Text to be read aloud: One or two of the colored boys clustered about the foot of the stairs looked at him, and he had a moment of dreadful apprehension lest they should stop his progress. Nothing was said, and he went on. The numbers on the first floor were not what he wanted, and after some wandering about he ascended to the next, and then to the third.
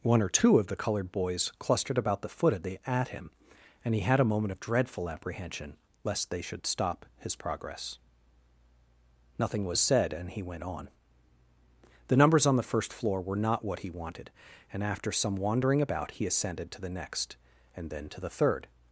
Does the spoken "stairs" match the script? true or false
false